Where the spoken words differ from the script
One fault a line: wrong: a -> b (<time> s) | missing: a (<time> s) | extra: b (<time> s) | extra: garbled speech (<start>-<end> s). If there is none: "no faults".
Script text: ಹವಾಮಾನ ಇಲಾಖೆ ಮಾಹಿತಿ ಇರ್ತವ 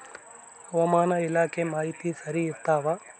extra: ಸರಿ (2.2 s)